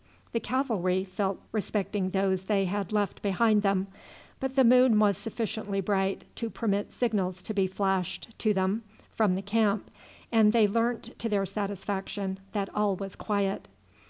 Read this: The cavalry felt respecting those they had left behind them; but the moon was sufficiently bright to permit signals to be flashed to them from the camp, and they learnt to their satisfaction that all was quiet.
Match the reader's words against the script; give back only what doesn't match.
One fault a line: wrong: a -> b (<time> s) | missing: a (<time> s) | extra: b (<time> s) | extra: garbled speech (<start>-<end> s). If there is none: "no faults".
no faults